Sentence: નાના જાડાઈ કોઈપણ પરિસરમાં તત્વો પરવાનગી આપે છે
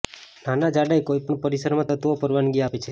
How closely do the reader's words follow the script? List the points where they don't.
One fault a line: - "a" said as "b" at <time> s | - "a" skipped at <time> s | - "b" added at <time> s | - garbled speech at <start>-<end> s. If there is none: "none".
none